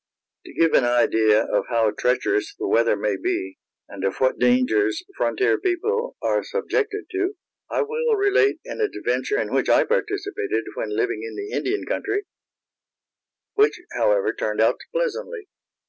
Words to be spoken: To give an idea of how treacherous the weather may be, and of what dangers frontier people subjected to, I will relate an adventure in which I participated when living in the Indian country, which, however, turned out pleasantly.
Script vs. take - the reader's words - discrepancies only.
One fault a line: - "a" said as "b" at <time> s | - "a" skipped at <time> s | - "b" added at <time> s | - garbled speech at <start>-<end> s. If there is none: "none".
- "are" added at 6.2 s